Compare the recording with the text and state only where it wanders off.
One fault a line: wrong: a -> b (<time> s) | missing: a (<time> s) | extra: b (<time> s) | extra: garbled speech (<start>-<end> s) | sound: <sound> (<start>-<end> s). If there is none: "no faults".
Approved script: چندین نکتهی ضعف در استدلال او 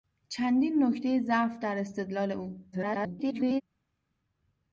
extra: garbled speech (2.7-3.6 s)